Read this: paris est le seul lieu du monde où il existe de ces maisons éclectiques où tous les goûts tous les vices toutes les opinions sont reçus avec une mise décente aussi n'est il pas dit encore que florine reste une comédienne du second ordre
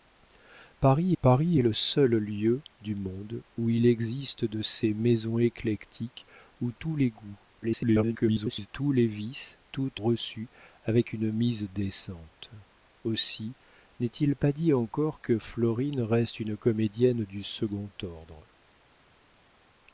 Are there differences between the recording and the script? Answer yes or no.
yes